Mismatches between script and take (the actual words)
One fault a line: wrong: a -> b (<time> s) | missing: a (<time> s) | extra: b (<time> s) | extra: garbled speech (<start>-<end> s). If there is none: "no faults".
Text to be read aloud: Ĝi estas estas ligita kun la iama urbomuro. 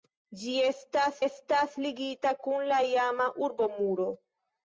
no faults